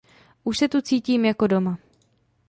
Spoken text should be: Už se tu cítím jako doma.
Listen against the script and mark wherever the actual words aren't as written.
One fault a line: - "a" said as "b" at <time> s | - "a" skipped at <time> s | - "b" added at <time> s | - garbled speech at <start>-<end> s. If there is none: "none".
none